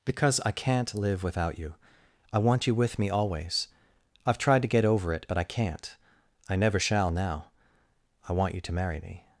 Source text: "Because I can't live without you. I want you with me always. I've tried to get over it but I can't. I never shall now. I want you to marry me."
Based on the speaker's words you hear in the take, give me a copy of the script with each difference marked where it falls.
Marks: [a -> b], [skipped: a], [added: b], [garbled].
"Because I can't live without you. I want you with me always. I've tried to get over it but I can't. I never shall now. I want you to marry me."